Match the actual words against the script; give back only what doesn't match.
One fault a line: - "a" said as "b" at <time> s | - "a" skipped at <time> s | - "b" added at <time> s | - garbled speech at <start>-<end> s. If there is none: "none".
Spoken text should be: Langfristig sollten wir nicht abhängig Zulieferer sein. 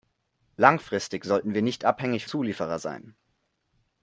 none